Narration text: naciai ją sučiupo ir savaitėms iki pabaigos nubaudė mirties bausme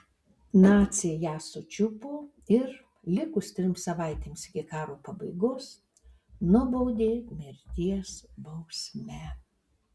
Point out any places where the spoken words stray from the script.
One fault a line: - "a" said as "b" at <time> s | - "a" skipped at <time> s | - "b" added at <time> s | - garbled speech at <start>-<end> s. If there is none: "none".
- "likus trims" added at 3.2 s
- "karo" added at 4.7 s